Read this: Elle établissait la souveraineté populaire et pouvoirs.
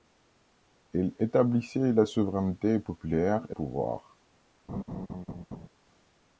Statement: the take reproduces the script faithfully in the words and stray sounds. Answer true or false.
false